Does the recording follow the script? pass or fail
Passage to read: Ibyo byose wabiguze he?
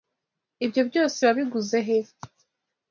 pass